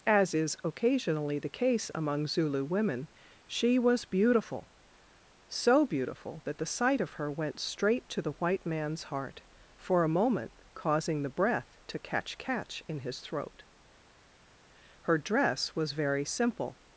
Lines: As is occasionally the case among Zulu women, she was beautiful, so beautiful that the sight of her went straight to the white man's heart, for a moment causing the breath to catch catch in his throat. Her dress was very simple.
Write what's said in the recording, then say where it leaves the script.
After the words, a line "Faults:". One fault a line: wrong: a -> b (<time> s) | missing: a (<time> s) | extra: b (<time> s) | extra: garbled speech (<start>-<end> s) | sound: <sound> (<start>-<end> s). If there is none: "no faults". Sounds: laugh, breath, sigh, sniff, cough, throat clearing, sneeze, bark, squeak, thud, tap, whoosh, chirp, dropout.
As is occasionally the case among Zulu women, she was beautiful, so beautiful that the sight of her went straight to the white man's heart, for a moment causing the breath to catch catch in his throat. Her dress was very simple.
Faults:
no faults